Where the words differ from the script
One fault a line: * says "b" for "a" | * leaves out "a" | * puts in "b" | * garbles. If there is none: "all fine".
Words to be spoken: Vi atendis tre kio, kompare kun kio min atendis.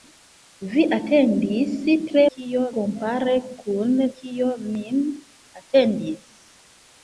all fine